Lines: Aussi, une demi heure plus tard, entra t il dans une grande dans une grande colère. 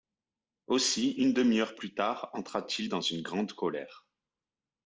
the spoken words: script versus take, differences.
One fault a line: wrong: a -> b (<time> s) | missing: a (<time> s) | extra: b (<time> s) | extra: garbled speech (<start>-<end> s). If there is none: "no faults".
missing: dans une grande (3.5 s)